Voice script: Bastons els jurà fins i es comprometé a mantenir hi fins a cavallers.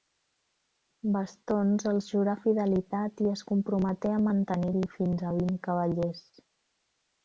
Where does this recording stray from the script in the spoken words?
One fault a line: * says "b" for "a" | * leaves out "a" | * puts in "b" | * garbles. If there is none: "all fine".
* says "fidelitat" for "fins"
* puts in "vint"